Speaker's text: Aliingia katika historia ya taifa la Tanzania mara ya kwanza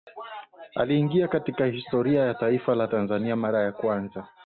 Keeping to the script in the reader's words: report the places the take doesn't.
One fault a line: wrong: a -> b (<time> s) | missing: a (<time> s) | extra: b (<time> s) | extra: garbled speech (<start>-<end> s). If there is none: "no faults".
no faults